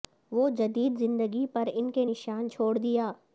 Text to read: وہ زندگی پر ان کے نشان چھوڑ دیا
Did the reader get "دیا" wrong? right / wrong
right